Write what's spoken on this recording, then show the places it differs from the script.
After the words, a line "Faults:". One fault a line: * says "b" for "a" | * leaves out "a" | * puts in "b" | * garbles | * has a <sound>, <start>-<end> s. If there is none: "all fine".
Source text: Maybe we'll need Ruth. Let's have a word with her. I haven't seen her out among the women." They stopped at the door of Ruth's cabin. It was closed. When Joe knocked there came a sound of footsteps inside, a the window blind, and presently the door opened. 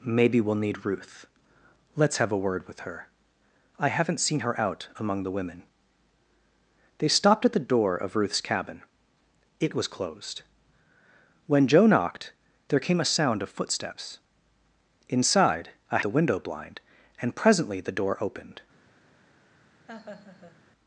Maybe we'll need Ruth. Let's have a word with her. I haven't seen her out among the women." They stopped at the door of Ruth's cabin. It was closed. When Joe knocked there came a sound of footsteps inside, a the window blind, and presently the door opened.
Faults:
* has a laugh, 19.9-20.6 s